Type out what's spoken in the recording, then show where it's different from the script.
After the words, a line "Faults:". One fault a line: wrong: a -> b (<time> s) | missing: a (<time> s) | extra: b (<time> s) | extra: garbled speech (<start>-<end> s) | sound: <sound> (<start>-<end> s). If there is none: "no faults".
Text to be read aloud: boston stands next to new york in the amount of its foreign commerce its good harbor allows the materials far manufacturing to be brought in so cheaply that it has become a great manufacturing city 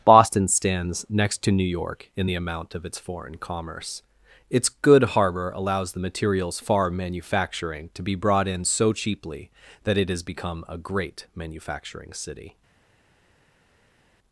boston stands next to new york in the amount of its foreign commerce its good harbor allows the materials far manufacturing to be brought in so cheaply that it has become a great manufacturing city
Faults:
no faults